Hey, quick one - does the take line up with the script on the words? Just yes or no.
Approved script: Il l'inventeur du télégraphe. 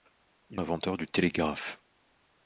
yes